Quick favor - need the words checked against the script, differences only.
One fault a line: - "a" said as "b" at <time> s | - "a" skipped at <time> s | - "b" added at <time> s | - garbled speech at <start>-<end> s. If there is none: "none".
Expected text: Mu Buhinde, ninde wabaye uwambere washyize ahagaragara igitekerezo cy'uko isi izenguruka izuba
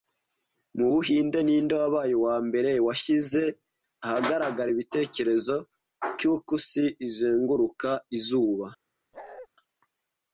none